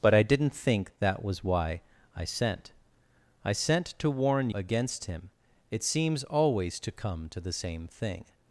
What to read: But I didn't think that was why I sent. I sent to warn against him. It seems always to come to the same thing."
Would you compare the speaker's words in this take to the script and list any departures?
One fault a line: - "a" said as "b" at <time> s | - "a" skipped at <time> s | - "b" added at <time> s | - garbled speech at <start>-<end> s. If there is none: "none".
none